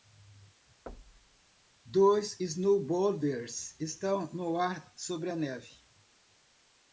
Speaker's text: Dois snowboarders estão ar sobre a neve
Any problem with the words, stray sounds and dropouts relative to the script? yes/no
yes